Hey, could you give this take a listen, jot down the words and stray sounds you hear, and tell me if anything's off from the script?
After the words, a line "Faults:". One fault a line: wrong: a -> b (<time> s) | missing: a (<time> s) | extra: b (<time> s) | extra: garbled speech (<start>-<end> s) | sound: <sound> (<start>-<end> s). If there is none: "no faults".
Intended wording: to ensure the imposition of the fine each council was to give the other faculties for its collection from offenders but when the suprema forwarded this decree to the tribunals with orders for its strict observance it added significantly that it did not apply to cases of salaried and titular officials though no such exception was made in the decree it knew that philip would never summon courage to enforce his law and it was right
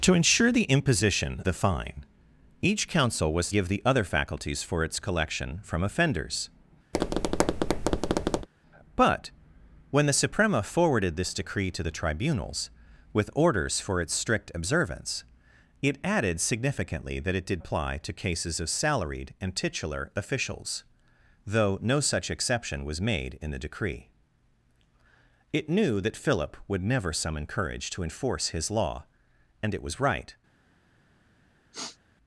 to ensure the imposition the fine each council was give the other faculties for its collection from offenders but when the suprema forwarded this decree to the tribunals with orders for its strict observance it added significantly that it did apply to cases of salaried and titular officials though no such exception was made in the decree it knew that philip would never summon courage to enforce his law and it was right
Faults:
missing: of (1.4 s)
missing: to (3.5 s)
sound: tap (6.9-8.5 s)
missing: not (17.6 s)
sound: sniff (31.7-32.0 s)